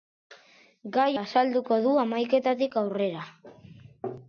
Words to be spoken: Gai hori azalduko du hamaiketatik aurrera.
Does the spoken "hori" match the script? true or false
false